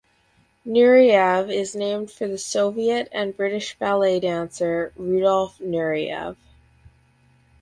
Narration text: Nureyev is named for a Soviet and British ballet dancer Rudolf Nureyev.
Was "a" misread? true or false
true